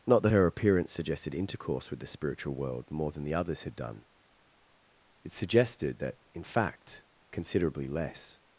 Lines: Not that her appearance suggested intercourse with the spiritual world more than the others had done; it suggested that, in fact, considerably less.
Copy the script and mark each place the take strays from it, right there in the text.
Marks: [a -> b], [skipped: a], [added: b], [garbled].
Not that her appearance suggested intercourse with the spiritual world more than the others had done; it suggested that, in fact, considerably less.